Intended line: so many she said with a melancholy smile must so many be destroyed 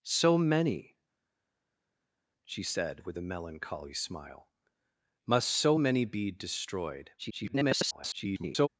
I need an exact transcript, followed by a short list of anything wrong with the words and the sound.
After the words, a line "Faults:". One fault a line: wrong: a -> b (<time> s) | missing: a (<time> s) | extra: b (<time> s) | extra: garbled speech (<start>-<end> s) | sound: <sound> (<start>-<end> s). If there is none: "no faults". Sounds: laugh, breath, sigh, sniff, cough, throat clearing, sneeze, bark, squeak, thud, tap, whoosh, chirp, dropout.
so many she said with a melancholy smile must so many be destroyed [garbled]
Faults:
extra: garbled speech (7.2-8.7 s)